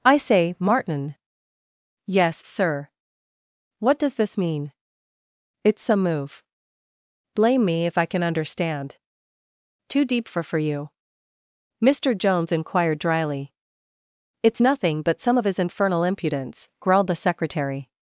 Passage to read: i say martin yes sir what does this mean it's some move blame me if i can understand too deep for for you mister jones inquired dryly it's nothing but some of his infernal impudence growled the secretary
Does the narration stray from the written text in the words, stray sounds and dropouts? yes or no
no